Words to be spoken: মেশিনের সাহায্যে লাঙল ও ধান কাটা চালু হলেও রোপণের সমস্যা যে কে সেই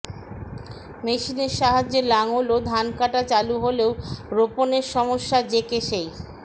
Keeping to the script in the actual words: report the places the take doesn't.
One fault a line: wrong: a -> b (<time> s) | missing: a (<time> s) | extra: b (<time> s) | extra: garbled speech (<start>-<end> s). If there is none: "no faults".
no faults